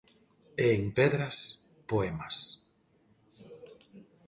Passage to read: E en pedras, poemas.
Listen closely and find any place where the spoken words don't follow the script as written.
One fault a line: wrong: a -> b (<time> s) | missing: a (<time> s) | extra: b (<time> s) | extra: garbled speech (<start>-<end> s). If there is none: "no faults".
no faults